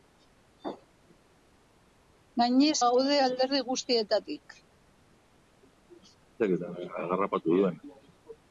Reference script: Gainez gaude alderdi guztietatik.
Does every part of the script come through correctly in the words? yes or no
yes